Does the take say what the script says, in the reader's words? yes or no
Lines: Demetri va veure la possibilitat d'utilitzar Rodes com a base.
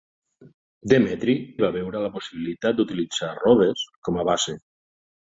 yes